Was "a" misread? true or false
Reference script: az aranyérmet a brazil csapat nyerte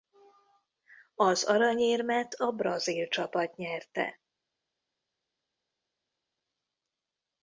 false